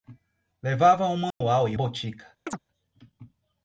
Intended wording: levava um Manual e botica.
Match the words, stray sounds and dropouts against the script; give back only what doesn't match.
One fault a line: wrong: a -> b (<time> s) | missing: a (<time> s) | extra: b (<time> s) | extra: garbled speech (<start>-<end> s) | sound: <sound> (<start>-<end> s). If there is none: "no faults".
sound: dropout (1.3-1.4 s)
sound: chirp (2.5-2.6 s)